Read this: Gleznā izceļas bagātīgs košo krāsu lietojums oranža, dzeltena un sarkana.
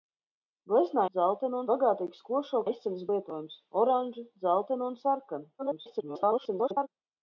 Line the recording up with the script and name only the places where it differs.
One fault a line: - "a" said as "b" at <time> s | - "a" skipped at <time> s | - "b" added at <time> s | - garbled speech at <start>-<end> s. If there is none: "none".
- "izceļas" said as "dzeltena" at 1.2 s
- "krāsu" said as "izceļas" at 2.7 s
- garbled speech at 5.6-6.9 s